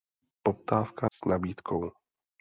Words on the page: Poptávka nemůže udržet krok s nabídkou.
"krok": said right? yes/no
no